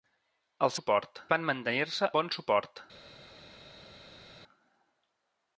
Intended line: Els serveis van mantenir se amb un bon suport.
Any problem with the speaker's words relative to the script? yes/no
yes